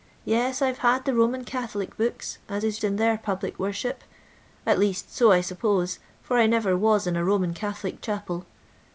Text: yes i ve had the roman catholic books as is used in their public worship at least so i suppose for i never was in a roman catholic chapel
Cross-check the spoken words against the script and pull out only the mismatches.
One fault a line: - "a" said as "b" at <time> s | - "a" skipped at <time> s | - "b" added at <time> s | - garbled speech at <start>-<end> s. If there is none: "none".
- "used" skipped at 2.8 s